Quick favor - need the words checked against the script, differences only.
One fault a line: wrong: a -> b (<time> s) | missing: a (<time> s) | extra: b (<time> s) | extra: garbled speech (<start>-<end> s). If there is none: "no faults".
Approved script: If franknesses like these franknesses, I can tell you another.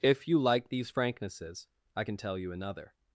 wrong: franknesses -> you (0.3 s)